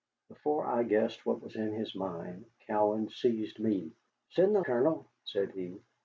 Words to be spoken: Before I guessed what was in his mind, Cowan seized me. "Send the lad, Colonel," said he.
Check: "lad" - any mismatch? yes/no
yes